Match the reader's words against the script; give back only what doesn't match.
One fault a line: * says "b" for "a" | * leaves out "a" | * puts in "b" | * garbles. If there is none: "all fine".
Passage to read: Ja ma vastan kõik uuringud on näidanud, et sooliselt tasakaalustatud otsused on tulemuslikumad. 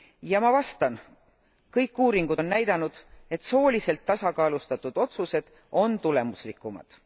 all fine